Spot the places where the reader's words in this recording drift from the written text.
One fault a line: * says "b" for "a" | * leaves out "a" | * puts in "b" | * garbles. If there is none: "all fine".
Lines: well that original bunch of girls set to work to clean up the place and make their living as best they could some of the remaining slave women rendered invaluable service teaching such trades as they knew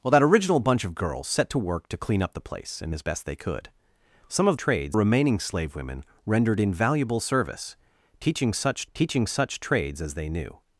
* leaves out "make their living"
* says "trades" for "the"
* puts in "teaching such"